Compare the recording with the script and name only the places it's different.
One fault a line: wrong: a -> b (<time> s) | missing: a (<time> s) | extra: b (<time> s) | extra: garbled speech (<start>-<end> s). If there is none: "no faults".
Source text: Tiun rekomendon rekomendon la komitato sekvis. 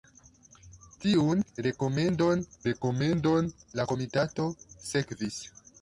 no faults